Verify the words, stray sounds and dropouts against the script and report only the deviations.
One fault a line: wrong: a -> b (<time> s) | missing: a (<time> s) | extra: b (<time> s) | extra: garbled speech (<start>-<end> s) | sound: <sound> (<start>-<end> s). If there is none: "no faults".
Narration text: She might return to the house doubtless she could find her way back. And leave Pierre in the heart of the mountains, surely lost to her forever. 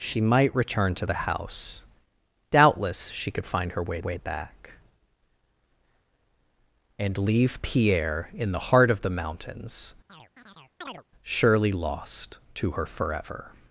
extra: way (4.0 s)
sound: chirp (10.1-11.0 s)